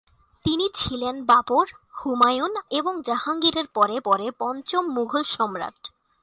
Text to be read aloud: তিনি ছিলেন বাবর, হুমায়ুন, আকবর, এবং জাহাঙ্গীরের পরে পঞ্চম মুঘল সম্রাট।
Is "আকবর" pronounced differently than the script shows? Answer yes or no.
yes